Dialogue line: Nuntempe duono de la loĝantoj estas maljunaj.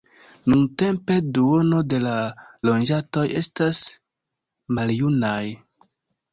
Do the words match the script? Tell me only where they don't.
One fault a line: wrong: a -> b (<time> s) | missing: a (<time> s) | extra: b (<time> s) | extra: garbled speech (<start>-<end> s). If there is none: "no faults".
no faults